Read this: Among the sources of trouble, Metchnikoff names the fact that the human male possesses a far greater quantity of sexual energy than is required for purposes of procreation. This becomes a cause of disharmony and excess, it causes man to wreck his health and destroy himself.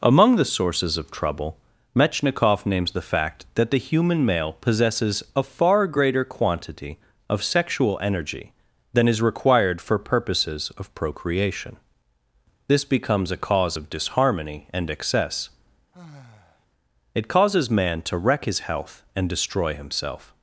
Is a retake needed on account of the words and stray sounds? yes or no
yes